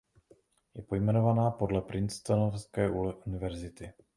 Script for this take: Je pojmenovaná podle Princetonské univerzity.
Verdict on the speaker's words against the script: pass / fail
pass